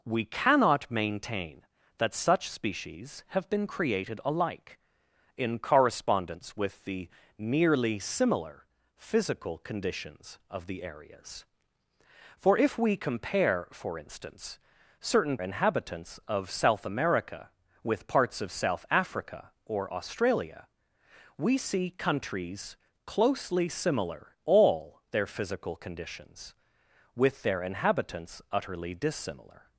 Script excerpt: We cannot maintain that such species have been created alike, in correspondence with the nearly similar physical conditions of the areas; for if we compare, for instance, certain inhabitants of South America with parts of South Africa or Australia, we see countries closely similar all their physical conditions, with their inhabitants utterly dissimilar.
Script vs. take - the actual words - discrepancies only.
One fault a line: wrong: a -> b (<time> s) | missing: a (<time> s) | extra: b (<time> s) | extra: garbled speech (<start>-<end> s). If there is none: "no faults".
no faults